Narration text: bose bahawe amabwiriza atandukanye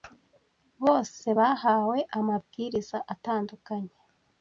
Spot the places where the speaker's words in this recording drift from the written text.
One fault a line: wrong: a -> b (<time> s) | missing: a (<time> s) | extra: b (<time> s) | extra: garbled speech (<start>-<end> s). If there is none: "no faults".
no faults